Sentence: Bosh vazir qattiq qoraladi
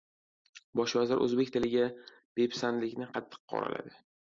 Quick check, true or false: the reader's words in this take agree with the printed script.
false